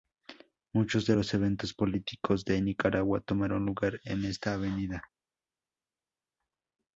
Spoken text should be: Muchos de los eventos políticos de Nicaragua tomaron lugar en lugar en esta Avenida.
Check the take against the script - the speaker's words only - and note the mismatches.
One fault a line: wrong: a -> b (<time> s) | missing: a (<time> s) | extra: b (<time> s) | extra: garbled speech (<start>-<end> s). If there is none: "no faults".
missing: lugar en (4.2 s)